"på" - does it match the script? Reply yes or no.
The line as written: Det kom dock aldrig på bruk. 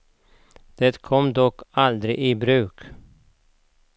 no